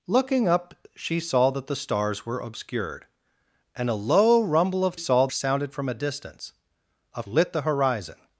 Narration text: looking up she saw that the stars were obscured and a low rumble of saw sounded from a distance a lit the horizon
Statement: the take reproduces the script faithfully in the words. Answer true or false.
true